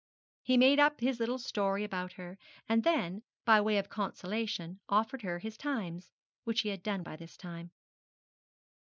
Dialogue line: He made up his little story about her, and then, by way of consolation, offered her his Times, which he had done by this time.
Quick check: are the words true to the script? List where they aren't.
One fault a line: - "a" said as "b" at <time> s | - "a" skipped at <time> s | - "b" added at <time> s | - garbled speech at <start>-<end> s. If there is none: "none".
none